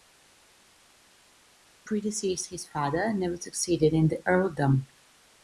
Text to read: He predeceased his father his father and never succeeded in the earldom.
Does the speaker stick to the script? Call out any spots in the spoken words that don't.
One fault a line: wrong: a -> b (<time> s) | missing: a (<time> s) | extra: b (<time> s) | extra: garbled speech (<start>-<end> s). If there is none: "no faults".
missing: his father (3.0 s)